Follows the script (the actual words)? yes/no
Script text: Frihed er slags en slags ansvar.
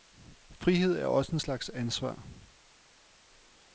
no